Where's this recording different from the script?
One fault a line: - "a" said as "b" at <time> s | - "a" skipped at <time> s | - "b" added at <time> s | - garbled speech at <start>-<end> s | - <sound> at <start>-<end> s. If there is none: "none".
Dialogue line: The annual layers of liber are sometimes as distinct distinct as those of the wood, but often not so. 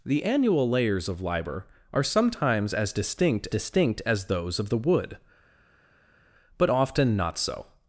none